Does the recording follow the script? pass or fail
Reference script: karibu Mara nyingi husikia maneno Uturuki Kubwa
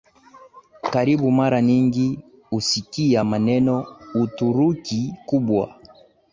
pass